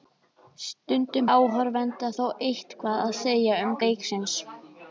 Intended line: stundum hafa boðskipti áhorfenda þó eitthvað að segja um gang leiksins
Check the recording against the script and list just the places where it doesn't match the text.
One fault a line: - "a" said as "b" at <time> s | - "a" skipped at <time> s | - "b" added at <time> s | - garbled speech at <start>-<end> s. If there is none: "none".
- "hafa boðskipti" skipped at 1.3 s
- "gang" skipped at 3.8 s